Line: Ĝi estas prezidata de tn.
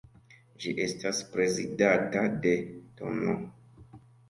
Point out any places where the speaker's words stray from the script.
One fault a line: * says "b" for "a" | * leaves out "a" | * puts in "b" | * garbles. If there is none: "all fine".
all fine